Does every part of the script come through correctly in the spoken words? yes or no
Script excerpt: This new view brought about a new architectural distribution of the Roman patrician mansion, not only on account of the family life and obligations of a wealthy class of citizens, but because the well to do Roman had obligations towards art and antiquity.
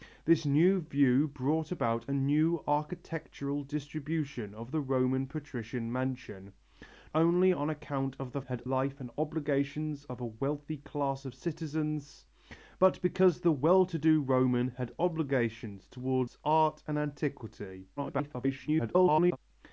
no